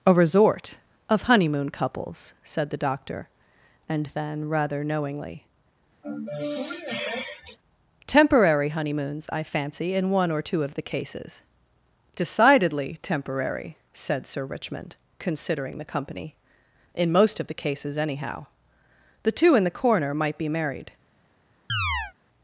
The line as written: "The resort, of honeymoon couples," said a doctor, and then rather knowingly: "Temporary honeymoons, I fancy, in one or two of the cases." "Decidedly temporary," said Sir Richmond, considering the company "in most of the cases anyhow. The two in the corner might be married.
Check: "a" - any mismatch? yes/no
yes